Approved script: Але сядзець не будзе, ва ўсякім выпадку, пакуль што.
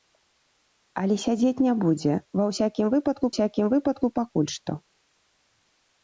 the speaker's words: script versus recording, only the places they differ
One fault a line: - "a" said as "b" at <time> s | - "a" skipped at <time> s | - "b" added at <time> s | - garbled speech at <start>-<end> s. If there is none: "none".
- "ўсякім выпадку" added at 3.3 s